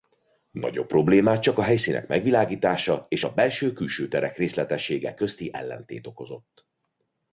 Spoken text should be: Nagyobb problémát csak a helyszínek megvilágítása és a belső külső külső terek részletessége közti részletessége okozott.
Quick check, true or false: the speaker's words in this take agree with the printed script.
false